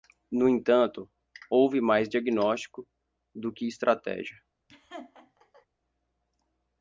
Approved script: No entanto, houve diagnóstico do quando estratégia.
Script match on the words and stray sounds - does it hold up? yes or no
no